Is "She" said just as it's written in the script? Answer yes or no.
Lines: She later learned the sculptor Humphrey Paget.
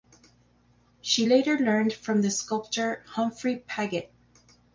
yes